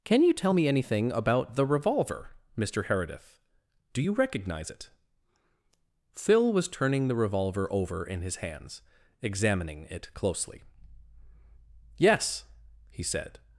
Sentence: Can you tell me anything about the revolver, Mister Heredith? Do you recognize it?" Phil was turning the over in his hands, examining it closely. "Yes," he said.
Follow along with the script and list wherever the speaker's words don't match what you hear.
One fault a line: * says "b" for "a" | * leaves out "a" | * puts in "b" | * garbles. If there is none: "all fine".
* puts in "revolver"